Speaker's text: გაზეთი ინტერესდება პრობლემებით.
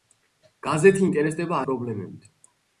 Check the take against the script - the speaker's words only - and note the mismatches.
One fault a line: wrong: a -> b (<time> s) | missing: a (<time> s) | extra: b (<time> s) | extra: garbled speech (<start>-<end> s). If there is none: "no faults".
no faults